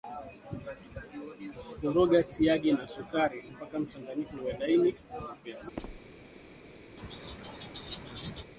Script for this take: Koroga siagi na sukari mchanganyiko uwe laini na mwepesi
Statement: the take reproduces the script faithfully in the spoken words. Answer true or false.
false